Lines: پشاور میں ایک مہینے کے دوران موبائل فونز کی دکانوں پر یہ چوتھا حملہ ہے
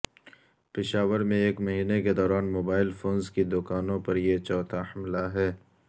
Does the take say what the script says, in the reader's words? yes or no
yes